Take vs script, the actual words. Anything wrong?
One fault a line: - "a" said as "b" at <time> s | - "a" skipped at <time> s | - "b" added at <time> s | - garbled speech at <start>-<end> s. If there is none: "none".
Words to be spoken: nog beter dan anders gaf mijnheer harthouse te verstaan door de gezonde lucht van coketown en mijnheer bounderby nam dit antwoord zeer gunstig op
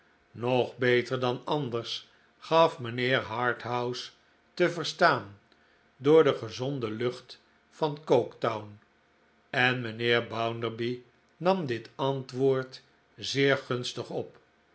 none